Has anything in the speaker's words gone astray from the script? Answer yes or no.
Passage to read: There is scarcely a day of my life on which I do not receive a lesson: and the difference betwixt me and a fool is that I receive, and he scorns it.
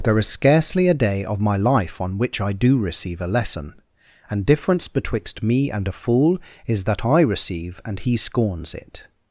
yes